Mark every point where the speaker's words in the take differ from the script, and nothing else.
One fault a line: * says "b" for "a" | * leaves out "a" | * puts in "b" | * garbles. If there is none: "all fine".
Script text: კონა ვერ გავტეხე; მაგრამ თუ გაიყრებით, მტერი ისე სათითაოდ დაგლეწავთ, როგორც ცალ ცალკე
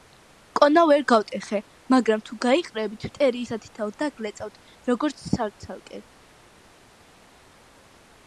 * leaves out "ისე"